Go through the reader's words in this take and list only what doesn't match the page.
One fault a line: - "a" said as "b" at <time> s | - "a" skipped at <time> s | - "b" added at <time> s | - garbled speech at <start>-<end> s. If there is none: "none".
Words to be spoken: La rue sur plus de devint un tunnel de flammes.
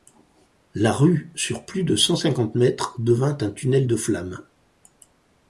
- "cent cinquante mètres" added at 1.9 s